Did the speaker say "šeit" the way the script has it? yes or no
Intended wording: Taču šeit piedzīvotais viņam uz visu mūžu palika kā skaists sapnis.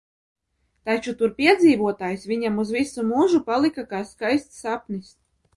no